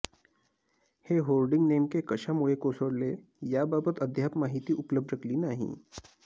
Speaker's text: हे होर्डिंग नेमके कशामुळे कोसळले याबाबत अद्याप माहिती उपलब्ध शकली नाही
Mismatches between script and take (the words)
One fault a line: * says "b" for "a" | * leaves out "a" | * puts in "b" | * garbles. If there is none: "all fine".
all fine